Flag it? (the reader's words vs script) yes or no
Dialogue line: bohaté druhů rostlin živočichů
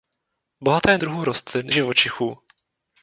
no